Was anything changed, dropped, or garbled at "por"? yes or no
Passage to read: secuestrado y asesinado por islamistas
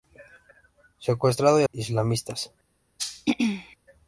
yes